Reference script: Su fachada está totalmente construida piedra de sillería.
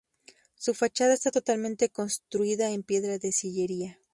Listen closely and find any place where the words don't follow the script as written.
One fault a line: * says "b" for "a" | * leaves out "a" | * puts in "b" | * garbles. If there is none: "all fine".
* puts in "en"